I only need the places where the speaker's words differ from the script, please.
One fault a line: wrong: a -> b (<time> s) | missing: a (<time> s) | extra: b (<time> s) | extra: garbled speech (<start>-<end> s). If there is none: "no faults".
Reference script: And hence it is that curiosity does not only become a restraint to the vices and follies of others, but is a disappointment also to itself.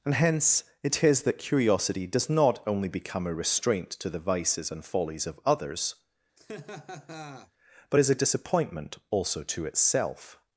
no faults